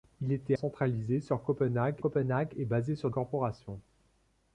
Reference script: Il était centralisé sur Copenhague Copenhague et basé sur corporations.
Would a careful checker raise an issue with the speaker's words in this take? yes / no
no